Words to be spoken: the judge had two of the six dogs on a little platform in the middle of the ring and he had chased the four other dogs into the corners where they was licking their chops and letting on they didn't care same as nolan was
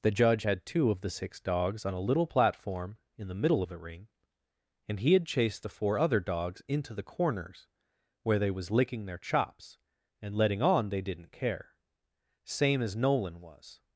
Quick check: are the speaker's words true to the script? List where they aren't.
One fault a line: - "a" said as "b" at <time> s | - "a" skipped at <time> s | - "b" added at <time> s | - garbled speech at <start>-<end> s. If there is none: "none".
none